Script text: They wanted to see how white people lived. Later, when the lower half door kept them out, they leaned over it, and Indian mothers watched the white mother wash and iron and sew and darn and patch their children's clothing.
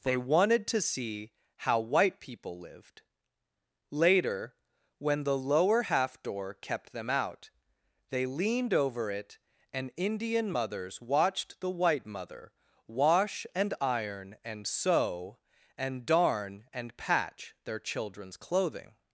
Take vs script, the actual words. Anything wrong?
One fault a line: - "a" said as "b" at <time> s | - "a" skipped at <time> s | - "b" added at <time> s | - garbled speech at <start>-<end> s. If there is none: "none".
none